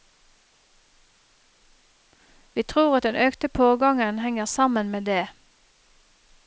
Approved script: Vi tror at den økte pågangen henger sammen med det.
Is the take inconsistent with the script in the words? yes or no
no